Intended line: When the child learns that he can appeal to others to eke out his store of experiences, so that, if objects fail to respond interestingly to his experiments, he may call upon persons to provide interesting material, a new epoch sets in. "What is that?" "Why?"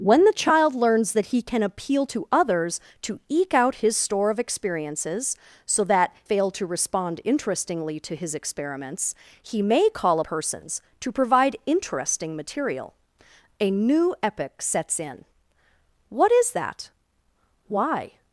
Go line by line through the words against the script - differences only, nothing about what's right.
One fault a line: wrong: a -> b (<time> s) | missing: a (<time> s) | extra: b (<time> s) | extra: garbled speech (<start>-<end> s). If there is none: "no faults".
missing: if objects (6.1 s)
missing: upon (10.2 s)